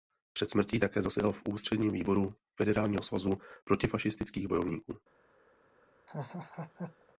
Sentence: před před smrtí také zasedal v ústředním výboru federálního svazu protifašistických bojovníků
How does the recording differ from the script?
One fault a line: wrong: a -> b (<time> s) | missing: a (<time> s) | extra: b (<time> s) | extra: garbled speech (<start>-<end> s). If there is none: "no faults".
missing: před (0.5 s)